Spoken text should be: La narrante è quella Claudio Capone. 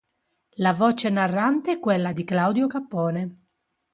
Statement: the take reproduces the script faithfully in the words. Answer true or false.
false